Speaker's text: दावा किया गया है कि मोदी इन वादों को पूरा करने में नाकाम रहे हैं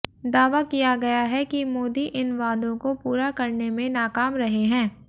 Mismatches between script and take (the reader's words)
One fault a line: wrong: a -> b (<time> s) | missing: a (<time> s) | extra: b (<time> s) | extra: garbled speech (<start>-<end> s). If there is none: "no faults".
no faults